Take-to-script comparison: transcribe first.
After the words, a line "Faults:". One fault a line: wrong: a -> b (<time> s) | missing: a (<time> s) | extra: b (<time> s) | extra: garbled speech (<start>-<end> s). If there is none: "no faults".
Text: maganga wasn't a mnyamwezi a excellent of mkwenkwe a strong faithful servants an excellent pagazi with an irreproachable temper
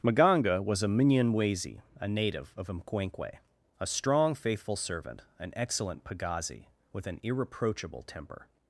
maganga was a mnyamwezi a native of mkwenkwe a strong faithful servant an excellent pagazi with an irreproachable temper
Faults:
wrong: wasn't -> was (0.6 s)
wrong: excellent -> native (2.1 s)
wrong: servants -> servant (4.8 s)